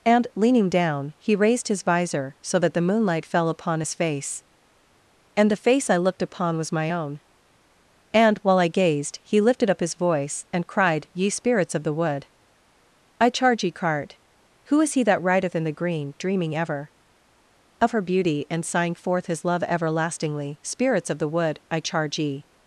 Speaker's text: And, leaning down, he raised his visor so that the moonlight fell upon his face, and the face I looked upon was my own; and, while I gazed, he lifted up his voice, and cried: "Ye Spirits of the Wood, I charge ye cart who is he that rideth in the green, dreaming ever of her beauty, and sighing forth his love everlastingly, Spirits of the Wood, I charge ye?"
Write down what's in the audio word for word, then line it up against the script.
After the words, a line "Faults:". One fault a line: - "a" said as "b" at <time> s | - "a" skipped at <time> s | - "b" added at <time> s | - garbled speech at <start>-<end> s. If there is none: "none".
And, leaning down, he raised his visor so that the moonlight fell upon his face, and the face I looked upon was my own; and, while I gazed, he lifted up his voice, and cried: "Ye Spirits of the Wood, I charge ye cart who is he that rideth in the green, dreaming ever of her beauty, and sighing forth his love everlastingly, Spirits of the Wood, I charge ye?"
Faults:
none